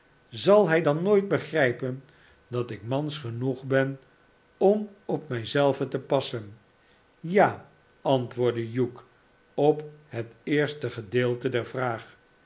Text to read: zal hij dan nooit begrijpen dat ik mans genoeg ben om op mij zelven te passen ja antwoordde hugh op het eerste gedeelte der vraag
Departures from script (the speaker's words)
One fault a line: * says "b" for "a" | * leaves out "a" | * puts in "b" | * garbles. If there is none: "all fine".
all fine